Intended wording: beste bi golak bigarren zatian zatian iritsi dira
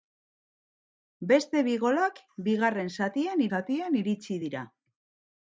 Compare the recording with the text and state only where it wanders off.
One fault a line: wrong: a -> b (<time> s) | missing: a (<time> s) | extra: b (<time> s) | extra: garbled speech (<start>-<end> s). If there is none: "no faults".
no faults